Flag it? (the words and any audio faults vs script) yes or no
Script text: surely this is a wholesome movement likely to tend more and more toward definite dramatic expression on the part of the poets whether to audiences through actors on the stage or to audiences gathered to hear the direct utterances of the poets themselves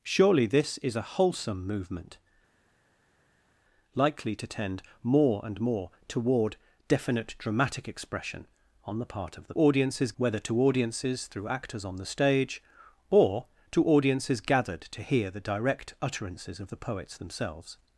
yes